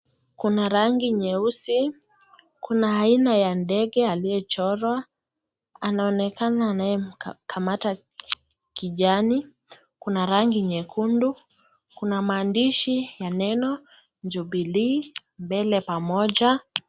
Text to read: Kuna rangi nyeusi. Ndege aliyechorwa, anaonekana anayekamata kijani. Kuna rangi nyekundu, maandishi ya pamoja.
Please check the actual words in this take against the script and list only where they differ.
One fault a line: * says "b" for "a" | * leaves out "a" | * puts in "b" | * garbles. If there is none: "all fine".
* puts in "Kuna aina ya"
* puts in "kuna"
* puts in "neno Jubilee mbele"